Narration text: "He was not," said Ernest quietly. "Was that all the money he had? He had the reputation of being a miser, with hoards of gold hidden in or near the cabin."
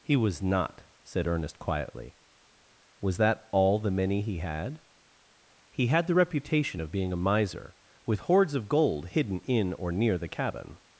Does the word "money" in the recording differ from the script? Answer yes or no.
yes